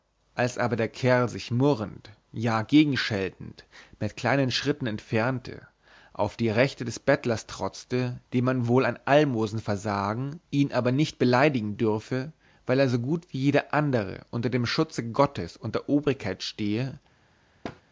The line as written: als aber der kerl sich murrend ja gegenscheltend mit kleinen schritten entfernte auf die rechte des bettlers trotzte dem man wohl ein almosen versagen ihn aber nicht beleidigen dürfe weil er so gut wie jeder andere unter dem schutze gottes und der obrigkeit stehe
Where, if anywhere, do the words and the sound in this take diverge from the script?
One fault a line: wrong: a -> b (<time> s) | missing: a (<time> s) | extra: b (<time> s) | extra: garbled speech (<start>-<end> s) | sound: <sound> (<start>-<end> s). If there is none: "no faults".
sound: thud (17.6-17.8 s)